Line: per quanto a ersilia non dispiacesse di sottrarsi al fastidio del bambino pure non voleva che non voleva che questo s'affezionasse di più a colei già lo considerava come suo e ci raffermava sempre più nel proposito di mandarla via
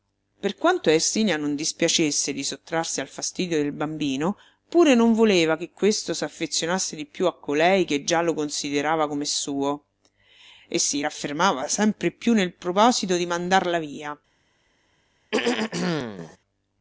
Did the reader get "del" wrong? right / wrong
right